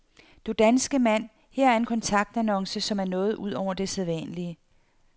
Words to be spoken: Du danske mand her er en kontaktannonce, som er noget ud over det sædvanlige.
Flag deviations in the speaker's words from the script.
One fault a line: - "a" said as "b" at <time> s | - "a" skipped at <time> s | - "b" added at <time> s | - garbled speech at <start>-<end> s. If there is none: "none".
none